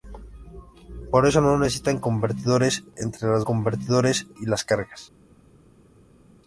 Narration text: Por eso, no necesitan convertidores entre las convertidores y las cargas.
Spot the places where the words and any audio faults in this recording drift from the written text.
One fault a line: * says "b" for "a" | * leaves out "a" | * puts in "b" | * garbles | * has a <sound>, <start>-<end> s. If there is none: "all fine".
all fine